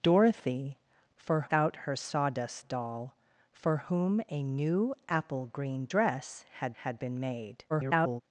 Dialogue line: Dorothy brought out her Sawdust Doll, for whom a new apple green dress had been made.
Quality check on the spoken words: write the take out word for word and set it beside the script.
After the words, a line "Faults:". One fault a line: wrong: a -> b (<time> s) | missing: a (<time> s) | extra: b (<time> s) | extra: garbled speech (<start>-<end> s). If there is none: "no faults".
Dorothy for out her Sawdust Doll, for whom a new apple green dress had had been made. [garbled]
Faults:
wrong: brought -> for (1.2 s)
extra: had (6.8 s)
extra: garbled speech (7.7-8.2 s)